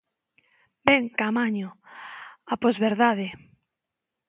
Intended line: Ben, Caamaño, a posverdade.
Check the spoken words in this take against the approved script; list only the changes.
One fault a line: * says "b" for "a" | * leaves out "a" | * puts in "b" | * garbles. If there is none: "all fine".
all fine